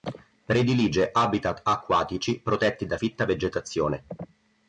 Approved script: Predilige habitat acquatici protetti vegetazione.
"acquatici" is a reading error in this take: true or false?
false